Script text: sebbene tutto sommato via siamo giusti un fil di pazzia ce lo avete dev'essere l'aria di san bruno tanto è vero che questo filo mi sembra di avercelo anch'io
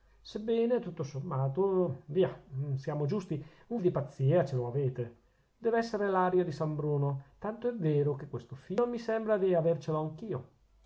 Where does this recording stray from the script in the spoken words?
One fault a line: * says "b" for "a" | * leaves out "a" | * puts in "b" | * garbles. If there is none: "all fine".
* leaves out "fil"